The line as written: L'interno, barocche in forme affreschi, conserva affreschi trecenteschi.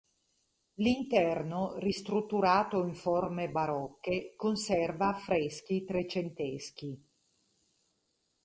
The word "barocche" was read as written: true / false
false